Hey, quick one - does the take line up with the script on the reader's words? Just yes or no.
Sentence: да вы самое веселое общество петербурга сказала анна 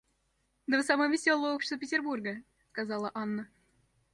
yes